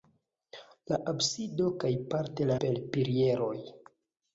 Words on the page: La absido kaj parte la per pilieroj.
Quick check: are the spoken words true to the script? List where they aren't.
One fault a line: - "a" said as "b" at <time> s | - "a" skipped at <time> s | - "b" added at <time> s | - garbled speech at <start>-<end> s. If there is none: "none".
none